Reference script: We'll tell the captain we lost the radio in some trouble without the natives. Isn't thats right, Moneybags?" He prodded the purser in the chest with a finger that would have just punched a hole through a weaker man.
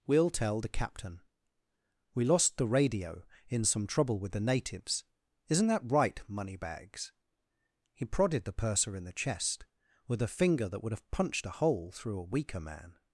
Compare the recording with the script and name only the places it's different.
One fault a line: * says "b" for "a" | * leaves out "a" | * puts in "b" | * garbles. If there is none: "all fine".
* says "with" for "without"
* says "that" for "thats"
* leaves out "just"